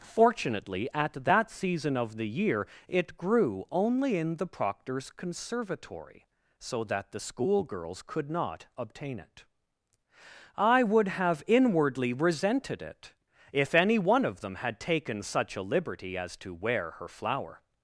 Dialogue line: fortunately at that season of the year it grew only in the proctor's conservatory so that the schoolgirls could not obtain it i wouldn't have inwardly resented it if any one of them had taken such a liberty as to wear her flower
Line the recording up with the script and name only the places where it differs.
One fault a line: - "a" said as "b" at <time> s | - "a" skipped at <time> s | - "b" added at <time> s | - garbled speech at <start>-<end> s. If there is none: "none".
- "wouldn't" said as "would" at 10.8 s